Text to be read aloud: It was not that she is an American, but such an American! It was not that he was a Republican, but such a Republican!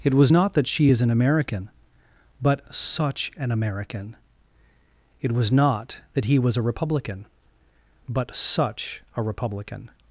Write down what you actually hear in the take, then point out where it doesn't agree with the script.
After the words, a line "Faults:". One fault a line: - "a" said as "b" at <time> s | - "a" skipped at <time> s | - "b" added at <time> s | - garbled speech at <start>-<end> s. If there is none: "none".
It was not that she is an American, but such an American! It was not that he was a Republican, but such a Republican!
Faults:
none